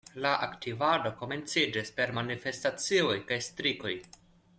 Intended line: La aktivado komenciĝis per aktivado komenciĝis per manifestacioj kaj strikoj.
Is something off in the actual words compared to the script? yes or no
yes